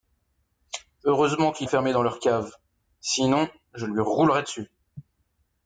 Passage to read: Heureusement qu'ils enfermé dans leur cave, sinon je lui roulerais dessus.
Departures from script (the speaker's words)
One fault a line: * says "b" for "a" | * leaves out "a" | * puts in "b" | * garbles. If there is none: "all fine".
all fine